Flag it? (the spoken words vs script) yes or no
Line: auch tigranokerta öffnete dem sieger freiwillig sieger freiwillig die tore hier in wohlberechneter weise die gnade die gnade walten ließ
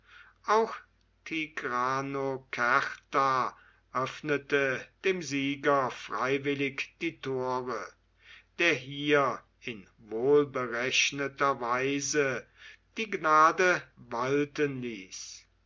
yes